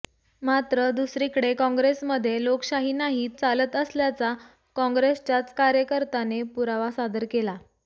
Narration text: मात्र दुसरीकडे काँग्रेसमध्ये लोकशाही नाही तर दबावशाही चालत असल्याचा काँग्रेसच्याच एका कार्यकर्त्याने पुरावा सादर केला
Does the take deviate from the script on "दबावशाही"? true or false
true